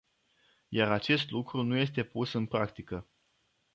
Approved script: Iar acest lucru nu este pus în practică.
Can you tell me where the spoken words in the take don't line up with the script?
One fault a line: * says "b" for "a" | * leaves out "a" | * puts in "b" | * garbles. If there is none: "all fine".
all fine